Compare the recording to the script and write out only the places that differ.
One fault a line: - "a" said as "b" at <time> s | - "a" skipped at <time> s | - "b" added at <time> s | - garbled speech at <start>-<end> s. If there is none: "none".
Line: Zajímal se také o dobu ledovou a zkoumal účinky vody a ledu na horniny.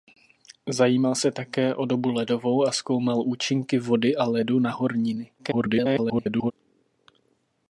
- garbled speech at 5.4-6.5 s